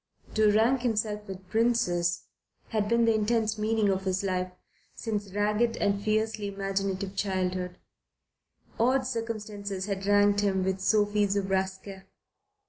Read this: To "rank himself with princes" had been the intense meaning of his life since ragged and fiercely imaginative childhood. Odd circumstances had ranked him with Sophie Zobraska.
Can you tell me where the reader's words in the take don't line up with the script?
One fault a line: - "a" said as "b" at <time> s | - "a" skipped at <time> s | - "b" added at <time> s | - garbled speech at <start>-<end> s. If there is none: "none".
none